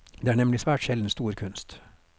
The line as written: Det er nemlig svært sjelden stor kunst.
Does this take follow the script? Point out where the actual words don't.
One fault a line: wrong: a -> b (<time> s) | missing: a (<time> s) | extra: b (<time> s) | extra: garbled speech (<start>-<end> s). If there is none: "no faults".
no faults